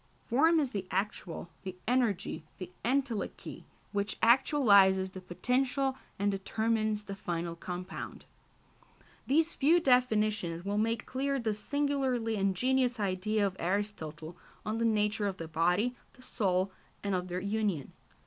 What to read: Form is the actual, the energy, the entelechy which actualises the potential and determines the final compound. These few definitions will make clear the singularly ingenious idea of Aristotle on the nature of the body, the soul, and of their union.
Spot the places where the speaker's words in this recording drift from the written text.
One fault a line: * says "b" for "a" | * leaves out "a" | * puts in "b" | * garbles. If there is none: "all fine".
all fine